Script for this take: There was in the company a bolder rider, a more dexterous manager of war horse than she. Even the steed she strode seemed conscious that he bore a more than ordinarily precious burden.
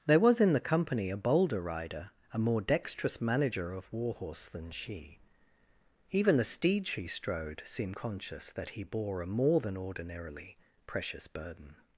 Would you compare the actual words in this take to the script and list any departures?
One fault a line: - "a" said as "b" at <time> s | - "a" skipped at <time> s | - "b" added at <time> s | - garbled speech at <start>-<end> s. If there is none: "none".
none